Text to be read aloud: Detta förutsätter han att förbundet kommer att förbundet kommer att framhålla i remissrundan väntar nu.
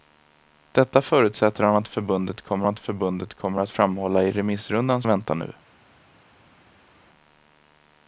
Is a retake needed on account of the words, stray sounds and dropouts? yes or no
no